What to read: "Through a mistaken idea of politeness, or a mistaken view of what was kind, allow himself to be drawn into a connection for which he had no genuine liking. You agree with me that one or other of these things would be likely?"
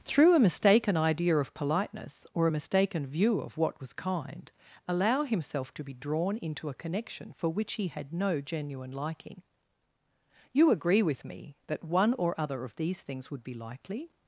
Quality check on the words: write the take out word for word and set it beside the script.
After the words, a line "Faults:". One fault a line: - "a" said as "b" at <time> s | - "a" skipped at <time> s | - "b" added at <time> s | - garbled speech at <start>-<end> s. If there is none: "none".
"Through a mistaken idea of politeness, or a mistaken view of what was kind, allow himself to be drawn into a connection for which he had no genuine liking. You agree with me that one or other of these things would be likely?"
Faults:
none